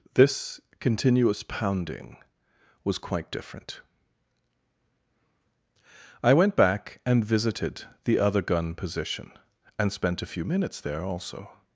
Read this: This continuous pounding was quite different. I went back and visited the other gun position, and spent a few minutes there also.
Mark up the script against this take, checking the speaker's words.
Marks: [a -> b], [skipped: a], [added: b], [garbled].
This continuous pounding was quite different. I went back and visited the other gun position, and spent a few minutes there also.